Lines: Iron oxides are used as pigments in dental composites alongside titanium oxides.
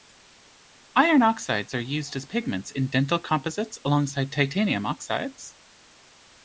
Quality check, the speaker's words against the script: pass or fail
pass